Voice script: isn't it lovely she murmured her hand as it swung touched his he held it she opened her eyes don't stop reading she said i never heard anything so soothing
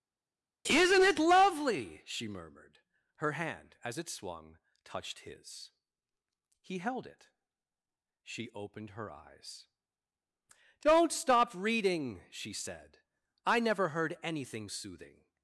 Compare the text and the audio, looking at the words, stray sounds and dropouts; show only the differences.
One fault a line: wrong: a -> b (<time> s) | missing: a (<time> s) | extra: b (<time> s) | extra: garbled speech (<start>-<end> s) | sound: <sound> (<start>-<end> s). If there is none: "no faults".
missing: so (14.7 s)